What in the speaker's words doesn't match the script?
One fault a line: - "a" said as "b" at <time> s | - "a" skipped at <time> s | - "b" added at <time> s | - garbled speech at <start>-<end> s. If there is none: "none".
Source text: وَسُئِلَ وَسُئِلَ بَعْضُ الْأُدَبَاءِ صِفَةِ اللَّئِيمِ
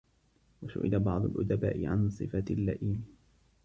- "وَسُئِلَ" skipped at 1.0 s
- "عَنْ" added at 1.9 s